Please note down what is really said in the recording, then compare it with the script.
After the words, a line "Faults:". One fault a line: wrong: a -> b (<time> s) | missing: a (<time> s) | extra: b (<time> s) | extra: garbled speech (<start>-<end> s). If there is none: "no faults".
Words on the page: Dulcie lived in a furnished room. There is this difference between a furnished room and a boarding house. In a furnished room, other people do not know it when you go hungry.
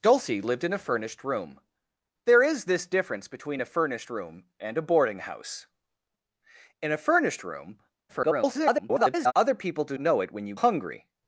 Dulcie lived in a furnished room. There is this difference between a furnished room and a boarding house. In a furnished room, [garbled] other people do know it when you hungry.
Faults:
extra: garbled speech (8.1-9.3 s)
missing: not (10.0 s)
missing: go (10.5 s)